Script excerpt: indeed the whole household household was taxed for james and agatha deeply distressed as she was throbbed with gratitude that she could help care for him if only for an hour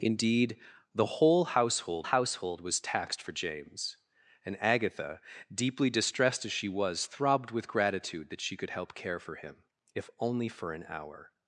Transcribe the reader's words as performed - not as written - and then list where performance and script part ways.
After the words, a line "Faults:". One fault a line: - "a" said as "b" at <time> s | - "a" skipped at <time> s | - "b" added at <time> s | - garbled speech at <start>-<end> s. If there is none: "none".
indeed the whole household household was taxed for james and agatha deeply distressed as she was throbbed with gratitude that she could help care for him if only for an hour
Faults:
none